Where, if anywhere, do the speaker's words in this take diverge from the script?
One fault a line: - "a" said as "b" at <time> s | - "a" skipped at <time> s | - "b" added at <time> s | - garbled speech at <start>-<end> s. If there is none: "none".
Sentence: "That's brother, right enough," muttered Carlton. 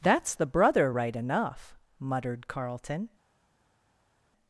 - "the" added at 0.3 s